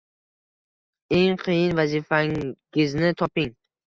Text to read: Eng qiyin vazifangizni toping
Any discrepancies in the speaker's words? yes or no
no